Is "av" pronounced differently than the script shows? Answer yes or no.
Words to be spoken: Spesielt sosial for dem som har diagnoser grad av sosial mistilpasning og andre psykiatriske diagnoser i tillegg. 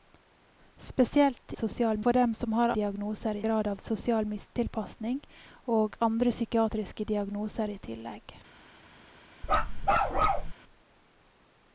no